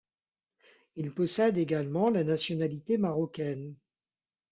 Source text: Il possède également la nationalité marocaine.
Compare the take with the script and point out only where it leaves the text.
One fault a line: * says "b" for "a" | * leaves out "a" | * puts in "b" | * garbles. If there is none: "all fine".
all fine